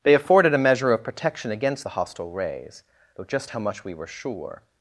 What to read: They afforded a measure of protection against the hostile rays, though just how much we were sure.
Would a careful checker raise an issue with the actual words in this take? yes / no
no